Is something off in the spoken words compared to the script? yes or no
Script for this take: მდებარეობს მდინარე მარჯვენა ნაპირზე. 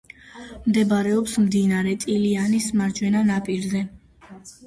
yes